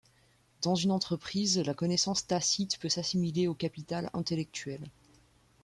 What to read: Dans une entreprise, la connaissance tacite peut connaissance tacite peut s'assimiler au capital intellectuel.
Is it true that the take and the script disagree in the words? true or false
true